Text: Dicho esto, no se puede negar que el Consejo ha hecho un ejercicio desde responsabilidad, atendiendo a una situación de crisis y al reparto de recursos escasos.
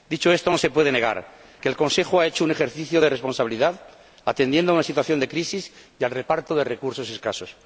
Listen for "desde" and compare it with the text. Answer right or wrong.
wrong